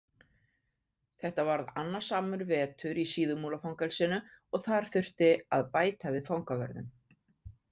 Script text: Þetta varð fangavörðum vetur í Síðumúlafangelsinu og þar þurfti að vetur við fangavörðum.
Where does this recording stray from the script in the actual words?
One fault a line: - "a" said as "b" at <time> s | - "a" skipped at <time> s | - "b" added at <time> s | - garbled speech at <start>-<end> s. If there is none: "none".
- "fangavörðum" said as "annasamur" at 1.8 s
- "vetur" said as "bæta" at 5.8 s